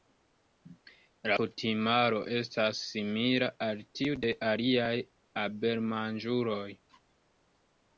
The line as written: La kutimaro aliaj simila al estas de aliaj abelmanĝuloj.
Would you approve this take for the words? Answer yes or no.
no